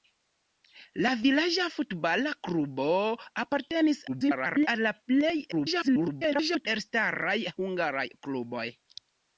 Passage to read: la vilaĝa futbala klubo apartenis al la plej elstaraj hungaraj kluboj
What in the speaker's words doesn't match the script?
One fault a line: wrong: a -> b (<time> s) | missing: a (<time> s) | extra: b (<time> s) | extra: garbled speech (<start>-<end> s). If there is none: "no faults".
extra: garbled speech (4.1-4.7 s)
extra: garbled speech (5.5-6.7 s)